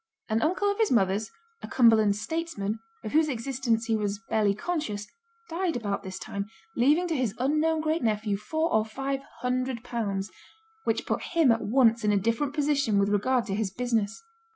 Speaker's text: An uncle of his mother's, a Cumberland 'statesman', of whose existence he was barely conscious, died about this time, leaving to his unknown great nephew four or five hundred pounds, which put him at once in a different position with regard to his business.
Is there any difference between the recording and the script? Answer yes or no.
no